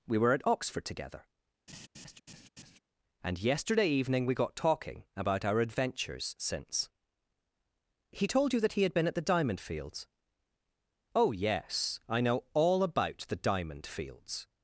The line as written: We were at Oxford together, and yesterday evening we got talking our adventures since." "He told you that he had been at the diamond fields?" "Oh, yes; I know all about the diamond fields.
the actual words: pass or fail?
fail